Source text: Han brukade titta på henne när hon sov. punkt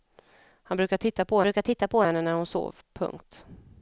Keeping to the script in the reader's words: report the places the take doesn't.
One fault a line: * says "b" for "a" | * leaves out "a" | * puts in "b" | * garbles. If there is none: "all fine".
* puts in "brukade titta på"